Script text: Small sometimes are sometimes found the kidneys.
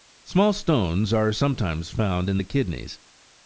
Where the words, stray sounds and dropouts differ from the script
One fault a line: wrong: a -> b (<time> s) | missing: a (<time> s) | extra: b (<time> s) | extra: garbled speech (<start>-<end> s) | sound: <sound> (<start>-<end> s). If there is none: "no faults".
wrong: sometimes -> stones (0.5 s)
extra: in (2.3 s)